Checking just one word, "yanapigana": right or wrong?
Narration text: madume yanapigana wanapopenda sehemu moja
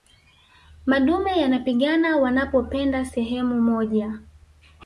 right